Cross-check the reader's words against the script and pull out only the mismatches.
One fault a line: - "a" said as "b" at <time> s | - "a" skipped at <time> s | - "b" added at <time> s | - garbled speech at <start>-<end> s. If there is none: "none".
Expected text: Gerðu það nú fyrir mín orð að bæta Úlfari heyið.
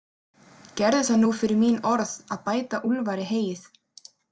none